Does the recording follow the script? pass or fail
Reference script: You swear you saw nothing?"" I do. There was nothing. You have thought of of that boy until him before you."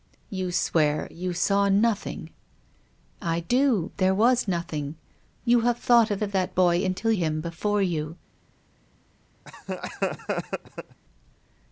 pass